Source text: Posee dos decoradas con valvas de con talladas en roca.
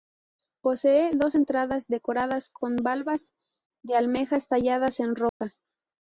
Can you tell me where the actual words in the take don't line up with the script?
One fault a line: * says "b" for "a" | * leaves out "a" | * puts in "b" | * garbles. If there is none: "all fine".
* puts in "entradas"
* says "almejas" for "con"